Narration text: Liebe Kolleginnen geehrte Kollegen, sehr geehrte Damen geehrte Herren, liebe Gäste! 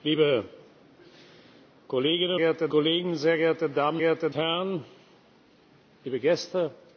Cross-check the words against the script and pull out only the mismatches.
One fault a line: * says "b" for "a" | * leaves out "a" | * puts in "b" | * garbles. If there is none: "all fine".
all fine